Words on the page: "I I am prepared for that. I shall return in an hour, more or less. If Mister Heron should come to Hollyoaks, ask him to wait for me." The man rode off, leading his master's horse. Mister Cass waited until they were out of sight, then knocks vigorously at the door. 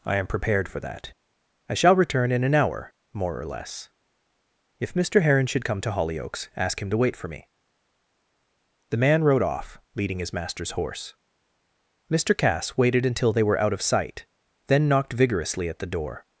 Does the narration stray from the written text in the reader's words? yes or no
yes